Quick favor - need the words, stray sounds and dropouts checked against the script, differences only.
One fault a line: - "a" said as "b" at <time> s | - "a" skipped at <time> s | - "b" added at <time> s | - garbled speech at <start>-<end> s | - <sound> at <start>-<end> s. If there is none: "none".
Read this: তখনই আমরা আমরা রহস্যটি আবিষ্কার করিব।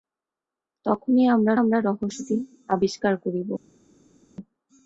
none